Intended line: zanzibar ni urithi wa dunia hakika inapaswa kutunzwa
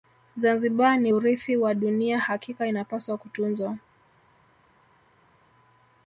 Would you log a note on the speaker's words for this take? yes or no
no